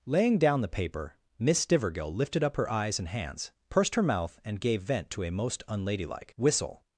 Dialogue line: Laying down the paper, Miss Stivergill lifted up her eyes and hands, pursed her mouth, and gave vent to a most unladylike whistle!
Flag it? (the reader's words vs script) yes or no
no